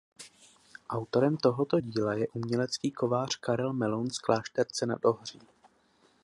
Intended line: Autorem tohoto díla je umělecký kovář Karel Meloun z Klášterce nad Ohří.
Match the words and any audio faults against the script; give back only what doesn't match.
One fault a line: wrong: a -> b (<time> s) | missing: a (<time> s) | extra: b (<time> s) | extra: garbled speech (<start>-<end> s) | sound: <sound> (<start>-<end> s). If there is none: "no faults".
no faults